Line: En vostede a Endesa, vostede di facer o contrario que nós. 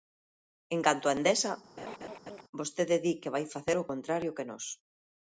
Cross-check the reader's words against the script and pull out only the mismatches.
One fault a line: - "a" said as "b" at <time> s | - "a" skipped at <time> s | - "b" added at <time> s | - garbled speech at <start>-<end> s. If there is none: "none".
- "vostede" said as "canto" at 0.9 s
- "que vai" added at 3.2 s